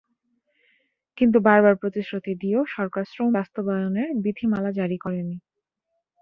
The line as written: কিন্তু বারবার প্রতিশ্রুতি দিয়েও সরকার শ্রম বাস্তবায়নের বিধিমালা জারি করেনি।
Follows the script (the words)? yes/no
yes